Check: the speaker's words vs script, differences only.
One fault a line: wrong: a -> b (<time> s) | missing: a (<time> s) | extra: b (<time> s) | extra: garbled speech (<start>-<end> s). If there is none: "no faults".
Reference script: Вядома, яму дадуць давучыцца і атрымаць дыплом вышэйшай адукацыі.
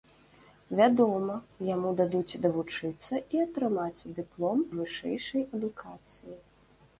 no faults